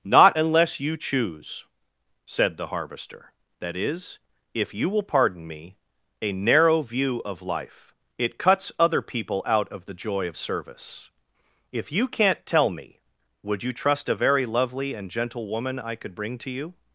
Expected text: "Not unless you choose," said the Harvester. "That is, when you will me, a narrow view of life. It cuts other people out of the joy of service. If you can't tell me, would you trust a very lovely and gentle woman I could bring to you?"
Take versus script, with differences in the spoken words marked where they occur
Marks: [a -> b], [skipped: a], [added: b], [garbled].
"Not unless you choose," said the Harvester. "That is, [when -> if] you will [added: pardon] me, a narrow view of life. It cuts other people out of the joy of service. If you can't tell me, would you trust a very lovely and gentle woman I could bring to you?"